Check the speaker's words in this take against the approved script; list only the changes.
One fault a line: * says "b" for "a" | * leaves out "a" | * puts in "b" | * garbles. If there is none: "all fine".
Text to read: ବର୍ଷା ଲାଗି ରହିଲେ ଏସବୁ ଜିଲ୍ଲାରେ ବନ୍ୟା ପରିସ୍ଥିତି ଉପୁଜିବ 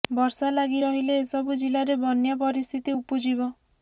all fine